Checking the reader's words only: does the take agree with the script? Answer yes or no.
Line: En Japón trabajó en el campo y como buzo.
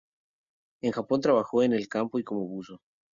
yes